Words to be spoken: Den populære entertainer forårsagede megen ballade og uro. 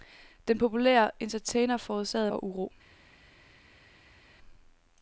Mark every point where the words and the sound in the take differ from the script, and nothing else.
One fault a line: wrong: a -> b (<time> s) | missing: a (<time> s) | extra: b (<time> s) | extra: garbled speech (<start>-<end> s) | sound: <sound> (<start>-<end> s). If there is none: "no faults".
missing: megen ballade (2.3 s)